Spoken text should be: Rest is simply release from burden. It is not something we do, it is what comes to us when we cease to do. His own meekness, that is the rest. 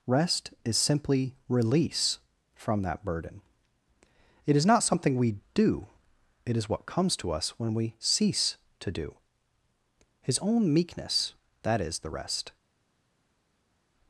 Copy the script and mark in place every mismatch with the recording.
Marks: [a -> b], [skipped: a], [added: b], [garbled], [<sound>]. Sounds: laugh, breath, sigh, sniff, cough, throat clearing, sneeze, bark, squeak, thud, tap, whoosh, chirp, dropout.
Rest is simply release from [added: that] burden. It is not something we do, it is what comes to us when we cease to do. His own meekness, that is the rest.